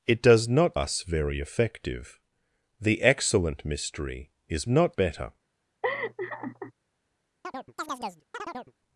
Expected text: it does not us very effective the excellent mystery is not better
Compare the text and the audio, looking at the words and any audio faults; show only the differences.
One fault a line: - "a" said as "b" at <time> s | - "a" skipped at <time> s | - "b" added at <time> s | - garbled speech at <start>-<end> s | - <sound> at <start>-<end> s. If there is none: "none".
- laugh at 5.8-6.7 s
- chirp at 7.4-8.7 s